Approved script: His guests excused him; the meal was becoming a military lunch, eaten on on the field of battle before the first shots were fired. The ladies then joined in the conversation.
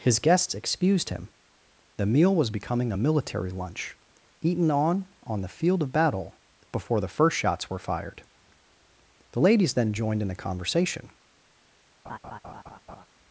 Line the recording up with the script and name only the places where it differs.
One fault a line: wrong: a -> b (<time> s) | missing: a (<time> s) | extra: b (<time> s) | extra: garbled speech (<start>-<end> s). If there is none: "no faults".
no faults